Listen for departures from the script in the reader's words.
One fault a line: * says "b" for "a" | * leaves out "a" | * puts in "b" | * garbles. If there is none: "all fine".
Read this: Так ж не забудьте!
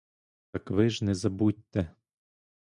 * puts in "ви"